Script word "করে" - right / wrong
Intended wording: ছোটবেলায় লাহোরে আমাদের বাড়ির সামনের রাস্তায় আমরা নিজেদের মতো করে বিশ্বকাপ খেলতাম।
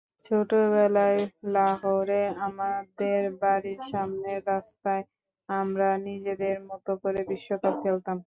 right